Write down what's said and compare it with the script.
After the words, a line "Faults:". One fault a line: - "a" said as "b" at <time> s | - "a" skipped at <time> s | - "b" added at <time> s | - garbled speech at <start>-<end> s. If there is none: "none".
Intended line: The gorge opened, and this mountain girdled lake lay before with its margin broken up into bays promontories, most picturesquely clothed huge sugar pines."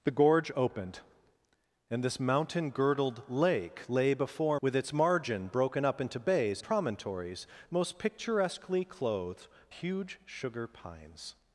The gorge opened, and this mountain girdled lake lay before with its margin broken up into bays promontories, most picturesquely clothed huge sugar pines."
Faults:
none